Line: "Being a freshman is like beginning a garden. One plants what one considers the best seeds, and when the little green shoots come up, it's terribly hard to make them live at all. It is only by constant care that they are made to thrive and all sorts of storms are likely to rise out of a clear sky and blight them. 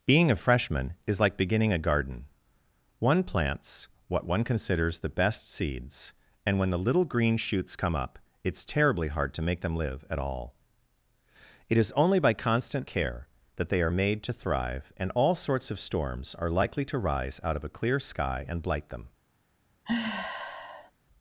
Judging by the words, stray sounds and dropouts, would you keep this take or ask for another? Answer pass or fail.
fail